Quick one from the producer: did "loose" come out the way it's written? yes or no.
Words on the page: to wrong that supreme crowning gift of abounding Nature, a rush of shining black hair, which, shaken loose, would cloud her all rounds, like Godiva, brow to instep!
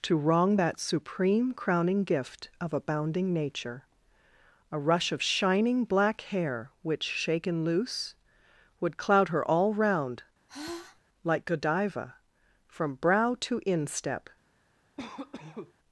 yes